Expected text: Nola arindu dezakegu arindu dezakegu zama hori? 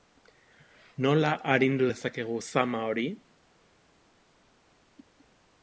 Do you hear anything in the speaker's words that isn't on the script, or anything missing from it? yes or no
yes